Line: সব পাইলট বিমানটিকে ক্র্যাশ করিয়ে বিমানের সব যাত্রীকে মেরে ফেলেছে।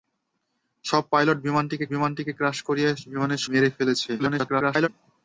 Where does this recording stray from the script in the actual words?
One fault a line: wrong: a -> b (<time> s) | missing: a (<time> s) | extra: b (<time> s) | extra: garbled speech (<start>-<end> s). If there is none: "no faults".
extra: বিমানটিকে (1.9 s)
missing: সব যাত্রীকে (3.4 s)
extra: garbled speech (4.2-4.9 s)